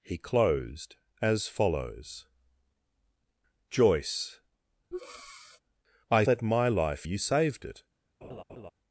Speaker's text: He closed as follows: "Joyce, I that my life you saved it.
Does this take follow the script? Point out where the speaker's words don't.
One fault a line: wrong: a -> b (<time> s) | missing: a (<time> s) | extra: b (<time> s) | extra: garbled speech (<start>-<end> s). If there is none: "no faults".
no faults